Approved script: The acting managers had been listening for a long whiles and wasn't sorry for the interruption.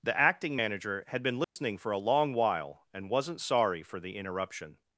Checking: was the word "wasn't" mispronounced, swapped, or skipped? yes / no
no